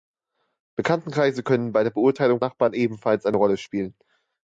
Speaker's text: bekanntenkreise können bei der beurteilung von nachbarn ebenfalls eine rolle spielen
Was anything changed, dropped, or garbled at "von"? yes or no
yes